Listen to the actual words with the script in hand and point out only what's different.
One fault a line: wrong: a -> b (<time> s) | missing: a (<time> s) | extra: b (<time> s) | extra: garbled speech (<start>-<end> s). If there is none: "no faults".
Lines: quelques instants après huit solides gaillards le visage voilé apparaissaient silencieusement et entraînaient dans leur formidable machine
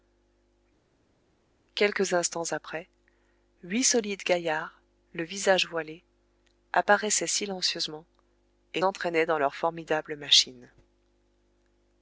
no faults